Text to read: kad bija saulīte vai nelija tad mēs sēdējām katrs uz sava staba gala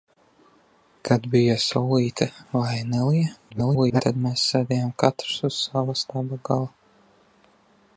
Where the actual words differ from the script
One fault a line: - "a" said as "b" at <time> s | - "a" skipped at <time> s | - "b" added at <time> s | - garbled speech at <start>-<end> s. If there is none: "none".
- garbled speech at 3.5-4.0 s